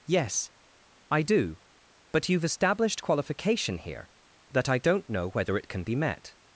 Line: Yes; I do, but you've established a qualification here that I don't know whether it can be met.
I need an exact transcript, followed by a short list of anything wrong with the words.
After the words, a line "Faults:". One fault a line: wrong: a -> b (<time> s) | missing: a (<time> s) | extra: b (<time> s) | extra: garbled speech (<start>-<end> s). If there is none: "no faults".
Yes; I do, but you've established qualification here that I don't know whether it can be met.
Faults:
missing: a (3.0 s)